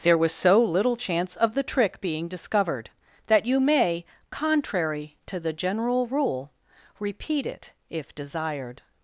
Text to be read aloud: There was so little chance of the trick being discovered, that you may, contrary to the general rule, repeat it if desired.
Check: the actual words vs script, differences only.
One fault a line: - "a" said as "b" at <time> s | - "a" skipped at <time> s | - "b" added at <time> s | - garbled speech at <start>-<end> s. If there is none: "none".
none